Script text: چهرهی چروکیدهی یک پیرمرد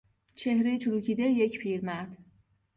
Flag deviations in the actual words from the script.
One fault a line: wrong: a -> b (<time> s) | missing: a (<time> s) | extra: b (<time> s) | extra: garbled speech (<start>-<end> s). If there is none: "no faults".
no faults